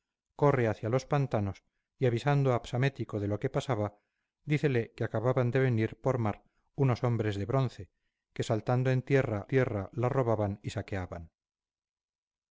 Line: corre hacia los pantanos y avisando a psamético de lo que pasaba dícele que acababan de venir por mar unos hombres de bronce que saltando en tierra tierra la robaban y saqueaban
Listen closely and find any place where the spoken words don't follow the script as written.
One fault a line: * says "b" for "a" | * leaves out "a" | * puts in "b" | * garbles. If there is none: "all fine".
all fine